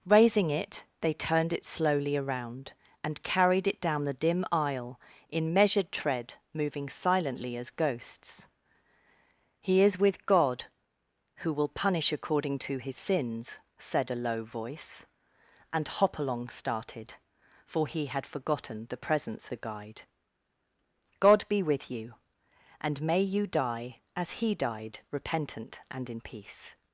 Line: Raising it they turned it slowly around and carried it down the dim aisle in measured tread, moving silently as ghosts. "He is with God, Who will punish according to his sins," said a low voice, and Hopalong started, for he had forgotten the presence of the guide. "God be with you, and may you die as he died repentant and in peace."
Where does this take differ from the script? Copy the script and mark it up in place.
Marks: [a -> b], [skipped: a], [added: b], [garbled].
Raising it they turned it slowly around and carried it down the dim aisle in measured tread, moving silently as ghosts. "He is with God, Who will punish according to his sins," said a low voice, and Hopalong started, for he had forgotten the presence [skipped: of] the guide. "God be with you, and may you die as he died repentant and in peace."